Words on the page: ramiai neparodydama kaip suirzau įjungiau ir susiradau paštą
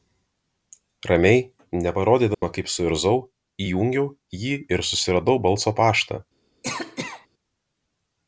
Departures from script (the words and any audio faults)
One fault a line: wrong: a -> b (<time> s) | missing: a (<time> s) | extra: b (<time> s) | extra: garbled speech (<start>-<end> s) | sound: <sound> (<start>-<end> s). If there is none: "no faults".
sound: dropout (2.3-2.4 s)
extra: jį (4.5 s)
extra: balso (5.5 s)
sound: cough (6.6-7.3 s)